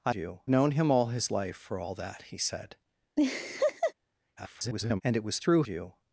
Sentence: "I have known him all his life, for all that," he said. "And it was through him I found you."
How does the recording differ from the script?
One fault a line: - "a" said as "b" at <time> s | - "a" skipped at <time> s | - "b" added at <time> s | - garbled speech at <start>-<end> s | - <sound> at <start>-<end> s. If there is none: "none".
- "have" said as "you" at 0.1 s
- laugh at 3.2-3.9 s
- garbled speech at 4.4-5.0 s
- "him I found" skipped at 5.6 s